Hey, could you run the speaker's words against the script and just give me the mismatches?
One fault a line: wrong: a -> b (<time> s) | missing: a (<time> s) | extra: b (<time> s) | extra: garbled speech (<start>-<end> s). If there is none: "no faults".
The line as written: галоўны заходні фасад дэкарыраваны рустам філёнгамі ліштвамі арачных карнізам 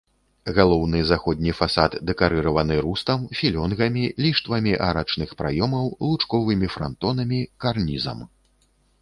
extra: праёмаў лучковымі франтонамі (5.4 s)